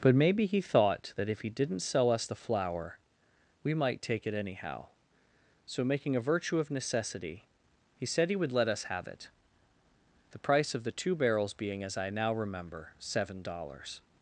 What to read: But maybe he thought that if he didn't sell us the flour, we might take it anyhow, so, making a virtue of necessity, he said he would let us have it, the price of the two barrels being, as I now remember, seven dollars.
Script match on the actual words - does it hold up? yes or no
yes